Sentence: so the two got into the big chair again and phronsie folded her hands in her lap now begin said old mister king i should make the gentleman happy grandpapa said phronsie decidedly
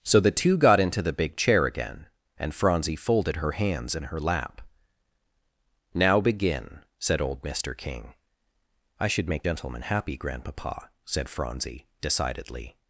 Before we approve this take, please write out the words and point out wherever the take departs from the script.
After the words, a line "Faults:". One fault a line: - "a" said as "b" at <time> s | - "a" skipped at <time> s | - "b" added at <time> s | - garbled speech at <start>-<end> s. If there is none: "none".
so the two got into the big chair again and phronsie folded her hands in her lap now begin said old mister king i should make gentleman happy grandpapa said phronsie decidedly
Faults:
- "the" skipped at 9.4 s